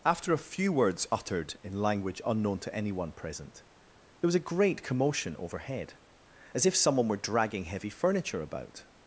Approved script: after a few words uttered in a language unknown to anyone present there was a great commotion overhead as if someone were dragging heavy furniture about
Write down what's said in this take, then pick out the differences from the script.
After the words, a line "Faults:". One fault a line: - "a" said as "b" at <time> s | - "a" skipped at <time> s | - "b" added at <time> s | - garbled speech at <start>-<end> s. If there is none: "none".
after a few words uttered in language unknown to anyone present there was a great commotion overhead as if someone were dragging heavy furniture about
Faults:
- "a" skipped at 1.8 s